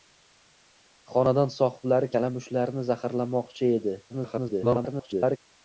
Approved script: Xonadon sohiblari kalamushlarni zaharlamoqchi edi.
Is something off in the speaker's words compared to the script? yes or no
yes